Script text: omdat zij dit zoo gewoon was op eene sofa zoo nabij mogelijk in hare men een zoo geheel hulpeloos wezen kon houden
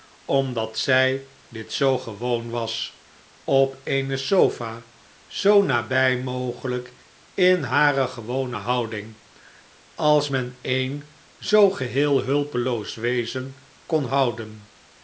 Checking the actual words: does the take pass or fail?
fail